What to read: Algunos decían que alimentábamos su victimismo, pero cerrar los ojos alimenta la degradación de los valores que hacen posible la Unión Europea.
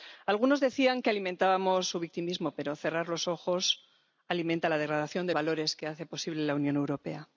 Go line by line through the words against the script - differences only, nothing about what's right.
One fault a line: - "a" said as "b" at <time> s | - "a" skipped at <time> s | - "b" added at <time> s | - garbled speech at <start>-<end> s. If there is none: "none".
- "los" skipped at 5.3 s